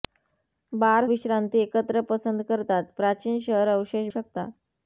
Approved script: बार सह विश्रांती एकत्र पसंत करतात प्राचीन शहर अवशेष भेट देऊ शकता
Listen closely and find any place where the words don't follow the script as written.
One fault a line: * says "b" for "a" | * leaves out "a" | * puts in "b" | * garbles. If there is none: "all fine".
* leaves out "सह"
* leaves out "भेट देऊ"